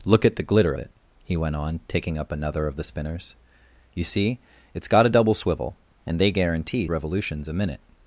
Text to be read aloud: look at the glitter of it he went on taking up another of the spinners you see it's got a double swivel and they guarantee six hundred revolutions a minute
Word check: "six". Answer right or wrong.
wrong